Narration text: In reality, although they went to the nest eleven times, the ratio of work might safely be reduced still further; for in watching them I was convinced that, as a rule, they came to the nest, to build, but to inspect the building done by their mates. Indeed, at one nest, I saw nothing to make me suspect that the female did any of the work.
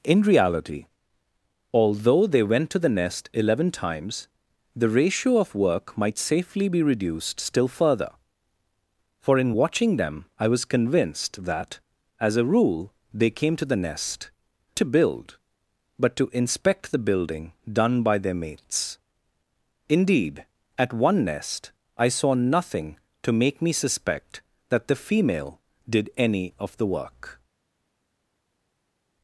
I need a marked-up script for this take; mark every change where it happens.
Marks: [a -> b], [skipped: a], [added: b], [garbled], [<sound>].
In reality, although they went to the nest eleven times, the ratio of work might safely be reduced still further; for in watching them I was convinced that, as a rule, they came to the nest, to build, but to inspect the building done by their mates. Indeed, at one nest, I saw nothing to make me suspect that the female did any of the work.